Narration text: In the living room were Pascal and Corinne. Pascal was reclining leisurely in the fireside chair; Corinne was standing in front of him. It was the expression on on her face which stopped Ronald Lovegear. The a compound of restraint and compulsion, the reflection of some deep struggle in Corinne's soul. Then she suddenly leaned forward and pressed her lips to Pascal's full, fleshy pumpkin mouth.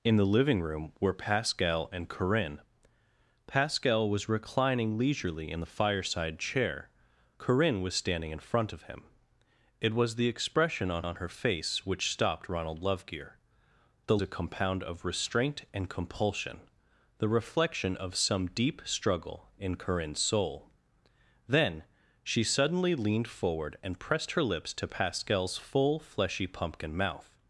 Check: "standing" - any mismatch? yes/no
no